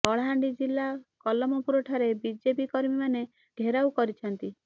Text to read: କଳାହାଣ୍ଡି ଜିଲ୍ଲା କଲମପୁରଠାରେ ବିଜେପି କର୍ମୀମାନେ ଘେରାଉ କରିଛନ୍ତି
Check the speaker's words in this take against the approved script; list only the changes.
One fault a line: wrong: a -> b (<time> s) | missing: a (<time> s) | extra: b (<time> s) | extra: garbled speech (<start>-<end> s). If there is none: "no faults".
no faults